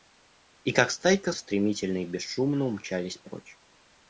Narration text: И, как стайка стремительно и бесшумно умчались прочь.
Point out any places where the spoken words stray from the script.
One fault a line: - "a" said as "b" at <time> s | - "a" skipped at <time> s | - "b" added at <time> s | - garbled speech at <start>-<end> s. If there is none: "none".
none